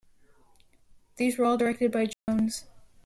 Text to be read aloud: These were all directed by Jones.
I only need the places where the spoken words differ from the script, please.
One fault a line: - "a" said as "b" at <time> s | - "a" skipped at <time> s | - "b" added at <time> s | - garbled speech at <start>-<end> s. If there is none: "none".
none